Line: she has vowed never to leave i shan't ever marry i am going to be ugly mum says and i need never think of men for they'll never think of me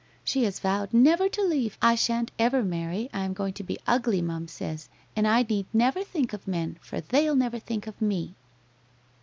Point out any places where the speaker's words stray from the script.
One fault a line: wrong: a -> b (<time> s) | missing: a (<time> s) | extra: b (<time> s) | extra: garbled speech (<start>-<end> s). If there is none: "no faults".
no faults